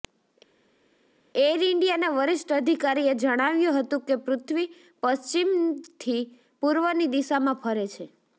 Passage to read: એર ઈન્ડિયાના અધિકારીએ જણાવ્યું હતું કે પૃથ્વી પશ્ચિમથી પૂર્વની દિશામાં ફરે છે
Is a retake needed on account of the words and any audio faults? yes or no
yes